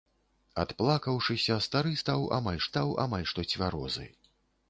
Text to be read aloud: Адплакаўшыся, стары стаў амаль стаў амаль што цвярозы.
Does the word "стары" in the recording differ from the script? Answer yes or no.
no